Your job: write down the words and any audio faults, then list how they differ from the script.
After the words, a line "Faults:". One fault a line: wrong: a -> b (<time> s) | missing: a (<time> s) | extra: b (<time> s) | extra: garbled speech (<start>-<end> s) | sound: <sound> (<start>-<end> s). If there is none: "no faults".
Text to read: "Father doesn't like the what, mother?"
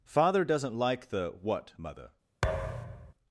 "Father doesn't like the what, mother?"
Faults:
sound: thud (2.4-3.1 s)